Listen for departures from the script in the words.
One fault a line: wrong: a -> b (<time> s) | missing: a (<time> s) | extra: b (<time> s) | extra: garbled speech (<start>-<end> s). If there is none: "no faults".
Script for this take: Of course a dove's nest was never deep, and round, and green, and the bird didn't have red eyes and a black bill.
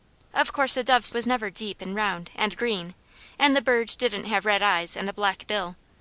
missing: nest (1.1 s)